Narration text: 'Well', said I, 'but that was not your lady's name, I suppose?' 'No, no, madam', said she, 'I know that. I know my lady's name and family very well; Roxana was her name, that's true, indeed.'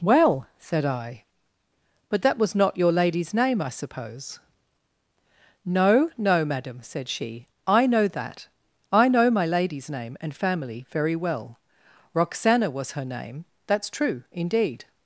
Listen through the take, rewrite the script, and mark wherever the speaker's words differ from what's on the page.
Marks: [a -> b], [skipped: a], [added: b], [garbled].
'Well', said I, 'but that was not your lady's name, I suppose?' 'No, no, madam', said she, 'I know that. I know my lady's name and family very well; Roxana was her name, that's true, indeed.'